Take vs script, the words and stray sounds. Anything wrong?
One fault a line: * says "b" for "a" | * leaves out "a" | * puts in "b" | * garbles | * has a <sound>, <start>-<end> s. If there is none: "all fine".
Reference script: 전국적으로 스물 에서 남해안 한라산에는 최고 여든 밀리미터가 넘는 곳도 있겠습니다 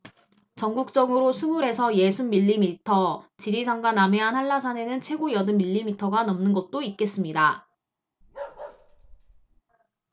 * puts in "예순 밀리미터 지리산과"
* has a bark, 8.2-9.6 s